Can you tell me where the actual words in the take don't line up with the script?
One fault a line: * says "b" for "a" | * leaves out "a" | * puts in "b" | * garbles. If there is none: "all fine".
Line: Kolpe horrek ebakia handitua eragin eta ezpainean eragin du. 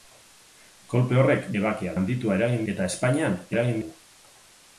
all fine